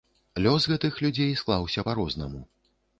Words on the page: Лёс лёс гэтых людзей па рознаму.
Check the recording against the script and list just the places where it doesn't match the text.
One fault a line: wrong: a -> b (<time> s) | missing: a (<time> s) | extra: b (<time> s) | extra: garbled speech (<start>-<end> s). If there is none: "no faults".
missing: лёс (0.6 s)
extra: склаўся (1.4 s)